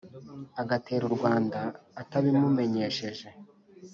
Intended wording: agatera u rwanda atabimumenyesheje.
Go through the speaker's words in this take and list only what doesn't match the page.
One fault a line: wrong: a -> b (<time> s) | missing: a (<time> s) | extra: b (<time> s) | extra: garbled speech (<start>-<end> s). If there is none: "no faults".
no faults